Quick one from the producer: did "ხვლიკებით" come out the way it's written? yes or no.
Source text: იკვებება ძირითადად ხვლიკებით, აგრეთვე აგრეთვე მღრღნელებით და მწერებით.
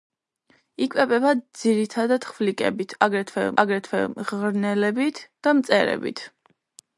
yes